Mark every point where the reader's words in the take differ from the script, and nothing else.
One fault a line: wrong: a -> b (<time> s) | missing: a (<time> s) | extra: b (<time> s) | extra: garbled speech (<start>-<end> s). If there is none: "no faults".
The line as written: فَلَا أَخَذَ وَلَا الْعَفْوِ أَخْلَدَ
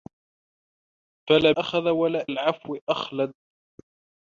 no faults